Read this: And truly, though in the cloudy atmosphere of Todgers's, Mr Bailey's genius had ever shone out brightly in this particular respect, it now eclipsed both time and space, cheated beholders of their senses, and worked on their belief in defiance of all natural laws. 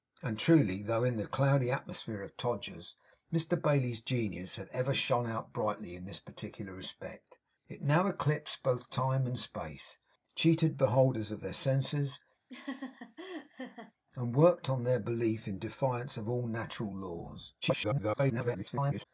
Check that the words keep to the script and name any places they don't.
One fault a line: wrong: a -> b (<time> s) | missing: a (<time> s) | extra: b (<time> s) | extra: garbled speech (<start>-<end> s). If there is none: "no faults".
extra: garbled speech (17.6-19.1 s)